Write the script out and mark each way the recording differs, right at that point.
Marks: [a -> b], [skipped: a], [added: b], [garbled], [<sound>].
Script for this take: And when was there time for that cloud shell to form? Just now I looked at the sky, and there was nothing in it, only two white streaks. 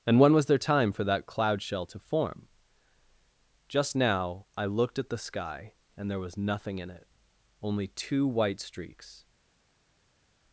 And when was there time for that cloud shell to form? Just now I looked at the sky, and there was nothing in it, only two white streaks.